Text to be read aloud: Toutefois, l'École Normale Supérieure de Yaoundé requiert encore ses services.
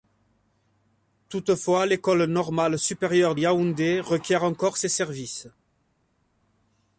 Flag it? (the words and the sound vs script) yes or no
yes